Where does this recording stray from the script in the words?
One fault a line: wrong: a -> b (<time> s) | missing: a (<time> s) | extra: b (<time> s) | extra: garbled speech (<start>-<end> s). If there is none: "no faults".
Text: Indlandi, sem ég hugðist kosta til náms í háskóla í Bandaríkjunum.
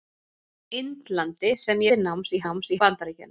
missing: ég hugðist kosta (1.9 s)
wrong: háskóla -> náms (2.4 s)